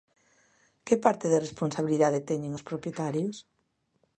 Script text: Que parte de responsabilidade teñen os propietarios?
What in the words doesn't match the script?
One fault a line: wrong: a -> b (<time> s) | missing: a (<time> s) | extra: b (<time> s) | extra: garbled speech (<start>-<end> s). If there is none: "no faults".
no faults